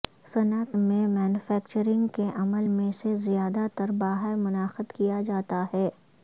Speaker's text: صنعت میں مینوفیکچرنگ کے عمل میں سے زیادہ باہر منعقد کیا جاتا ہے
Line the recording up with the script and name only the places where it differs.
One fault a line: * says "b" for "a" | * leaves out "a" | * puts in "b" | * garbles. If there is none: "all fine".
* puts in "تر"